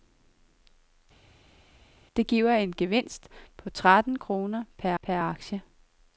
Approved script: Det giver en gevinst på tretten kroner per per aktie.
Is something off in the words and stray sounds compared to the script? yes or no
no